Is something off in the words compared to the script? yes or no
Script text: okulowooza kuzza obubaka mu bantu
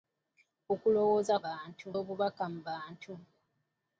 yes